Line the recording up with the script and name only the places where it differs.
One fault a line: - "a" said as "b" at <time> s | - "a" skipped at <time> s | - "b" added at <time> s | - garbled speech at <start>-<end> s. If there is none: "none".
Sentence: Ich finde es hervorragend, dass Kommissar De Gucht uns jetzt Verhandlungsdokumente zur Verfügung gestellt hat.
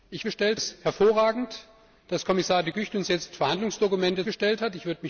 - "finde" said as "gestellt" at 0.2 s
- "zur Verfügung" skipped at 4.3 s